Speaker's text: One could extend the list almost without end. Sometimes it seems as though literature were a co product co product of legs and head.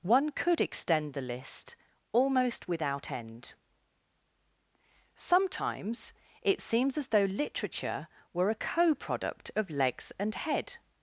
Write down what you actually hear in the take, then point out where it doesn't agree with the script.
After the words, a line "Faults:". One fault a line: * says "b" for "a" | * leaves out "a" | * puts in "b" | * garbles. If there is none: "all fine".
One could extend the list almost without end. Sometimes it seems as though literature were a co product of legs and head.
Faults:
* leaves out "co product"